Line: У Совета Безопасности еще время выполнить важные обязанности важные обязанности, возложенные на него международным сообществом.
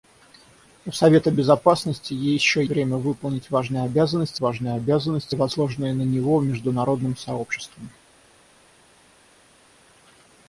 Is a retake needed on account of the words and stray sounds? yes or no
no